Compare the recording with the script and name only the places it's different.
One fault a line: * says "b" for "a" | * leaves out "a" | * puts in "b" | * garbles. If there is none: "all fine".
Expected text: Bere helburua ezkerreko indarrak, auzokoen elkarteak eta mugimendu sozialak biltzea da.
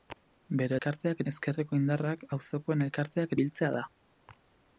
* says "elkarteak" for "helburua"
* leaves out "eta mugimendu sozialak"